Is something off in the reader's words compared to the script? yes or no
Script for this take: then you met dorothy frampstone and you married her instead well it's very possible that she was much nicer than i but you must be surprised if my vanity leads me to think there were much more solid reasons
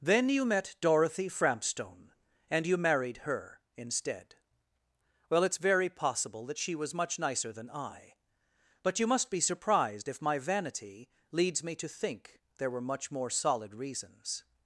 no